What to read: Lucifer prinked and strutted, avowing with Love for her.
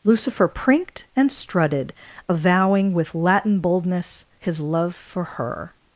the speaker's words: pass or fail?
fail